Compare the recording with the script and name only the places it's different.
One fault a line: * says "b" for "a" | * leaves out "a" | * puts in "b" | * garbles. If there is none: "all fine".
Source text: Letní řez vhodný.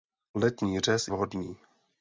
all fine